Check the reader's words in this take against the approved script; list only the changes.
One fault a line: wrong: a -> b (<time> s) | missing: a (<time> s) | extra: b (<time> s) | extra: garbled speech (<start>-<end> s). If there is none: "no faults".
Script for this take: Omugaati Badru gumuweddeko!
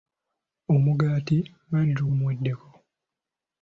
no faults